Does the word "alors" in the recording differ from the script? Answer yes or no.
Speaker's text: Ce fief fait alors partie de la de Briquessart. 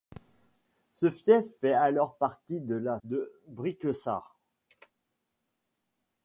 no